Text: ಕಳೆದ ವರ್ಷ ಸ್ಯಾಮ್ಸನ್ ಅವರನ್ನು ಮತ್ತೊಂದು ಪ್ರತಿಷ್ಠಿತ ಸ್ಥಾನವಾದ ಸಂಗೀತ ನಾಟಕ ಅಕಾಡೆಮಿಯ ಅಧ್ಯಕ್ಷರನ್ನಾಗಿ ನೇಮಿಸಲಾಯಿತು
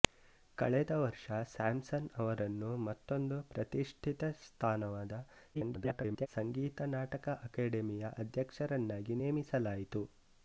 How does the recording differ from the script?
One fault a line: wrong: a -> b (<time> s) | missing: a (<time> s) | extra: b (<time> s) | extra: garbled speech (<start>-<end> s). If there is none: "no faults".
extra: garbled speech (5.5-6.3 s)